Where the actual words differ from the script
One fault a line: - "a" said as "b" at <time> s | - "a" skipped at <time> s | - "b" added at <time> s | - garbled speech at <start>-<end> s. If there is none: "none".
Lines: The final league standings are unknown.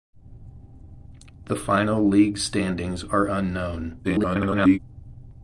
- garbled speech at 4.0-4.8 s